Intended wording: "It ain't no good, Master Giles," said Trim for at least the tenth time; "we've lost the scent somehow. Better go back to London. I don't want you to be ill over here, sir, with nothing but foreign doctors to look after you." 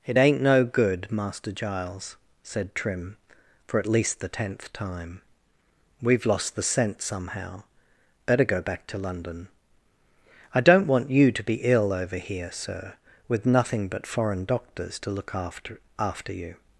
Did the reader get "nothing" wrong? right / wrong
right